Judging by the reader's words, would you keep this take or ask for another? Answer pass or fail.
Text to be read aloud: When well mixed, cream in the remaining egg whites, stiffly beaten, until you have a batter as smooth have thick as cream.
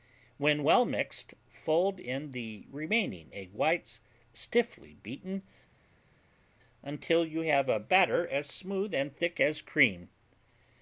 fail